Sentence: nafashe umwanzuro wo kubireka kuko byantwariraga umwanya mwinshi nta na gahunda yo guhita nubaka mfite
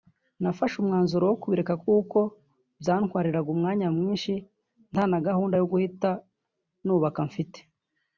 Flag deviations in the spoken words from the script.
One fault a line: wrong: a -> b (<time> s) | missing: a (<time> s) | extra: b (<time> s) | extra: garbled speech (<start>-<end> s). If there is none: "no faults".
no faults